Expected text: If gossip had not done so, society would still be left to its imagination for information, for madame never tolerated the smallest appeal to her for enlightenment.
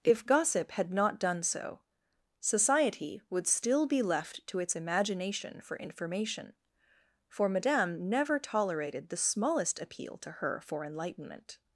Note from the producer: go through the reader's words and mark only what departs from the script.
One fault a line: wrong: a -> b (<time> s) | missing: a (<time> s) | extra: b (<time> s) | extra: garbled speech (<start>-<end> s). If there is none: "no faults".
no faults